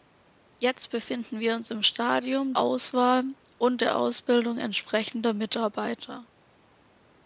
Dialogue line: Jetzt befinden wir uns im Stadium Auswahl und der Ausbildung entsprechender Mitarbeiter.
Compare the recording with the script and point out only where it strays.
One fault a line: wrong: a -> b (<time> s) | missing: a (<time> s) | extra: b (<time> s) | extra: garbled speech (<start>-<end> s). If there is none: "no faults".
no faults